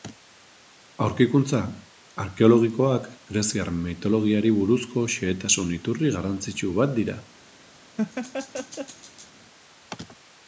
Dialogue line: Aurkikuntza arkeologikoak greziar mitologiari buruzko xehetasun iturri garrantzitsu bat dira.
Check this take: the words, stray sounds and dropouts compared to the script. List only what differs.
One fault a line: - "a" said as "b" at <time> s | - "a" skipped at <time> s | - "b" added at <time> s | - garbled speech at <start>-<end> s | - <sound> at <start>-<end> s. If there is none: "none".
- laugh at 8.0-9.3 s